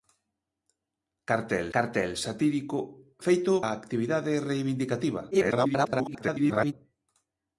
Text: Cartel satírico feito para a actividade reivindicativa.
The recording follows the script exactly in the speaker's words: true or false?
false